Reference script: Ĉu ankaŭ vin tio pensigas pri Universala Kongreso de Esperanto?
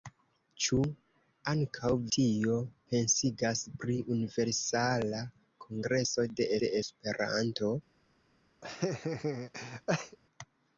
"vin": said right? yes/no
no